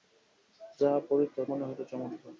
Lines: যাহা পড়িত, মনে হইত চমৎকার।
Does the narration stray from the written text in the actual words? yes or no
no